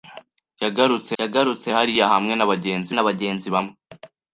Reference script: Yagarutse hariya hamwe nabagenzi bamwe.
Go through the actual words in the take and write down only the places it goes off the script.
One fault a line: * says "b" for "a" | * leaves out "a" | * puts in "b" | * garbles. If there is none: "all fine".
* puts in "yagarutse"
* puts in "nabagenzi"